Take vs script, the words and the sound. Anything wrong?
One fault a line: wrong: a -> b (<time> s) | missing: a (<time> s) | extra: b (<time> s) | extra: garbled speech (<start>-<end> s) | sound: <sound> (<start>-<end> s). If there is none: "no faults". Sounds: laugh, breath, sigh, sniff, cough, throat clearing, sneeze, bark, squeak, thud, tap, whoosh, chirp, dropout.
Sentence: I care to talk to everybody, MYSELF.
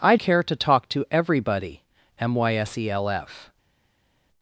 no faults